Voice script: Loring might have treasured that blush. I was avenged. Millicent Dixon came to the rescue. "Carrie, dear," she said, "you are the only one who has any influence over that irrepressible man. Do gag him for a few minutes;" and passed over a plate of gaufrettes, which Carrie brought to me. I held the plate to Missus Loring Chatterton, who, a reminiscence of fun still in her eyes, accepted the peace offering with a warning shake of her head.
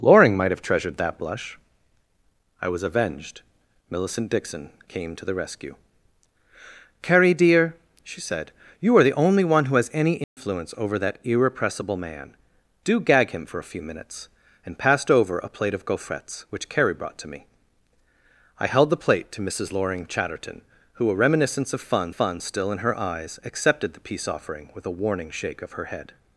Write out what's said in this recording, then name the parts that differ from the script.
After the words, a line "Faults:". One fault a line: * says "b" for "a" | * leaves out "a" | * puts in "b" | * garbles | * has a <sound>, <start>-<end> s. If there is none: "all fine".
Loring might have treasured that blush. I was avenged. Millicent Dixon came to the rescue. "Carrie, dear," she said, "you are the only one who has any influence over that irrepressible man. Do gag him for a few minutes;" and passed over a plate of gaufrettes, which Carrie brought to me. I held the plate to Missus Loring Chatterton, who, a reminiscence of fun fun still in her eyes, accepted the peace offering with a warning shake of her head.
Faults:
* has a dropout, 10.2-10.4 s
* puts in "fun"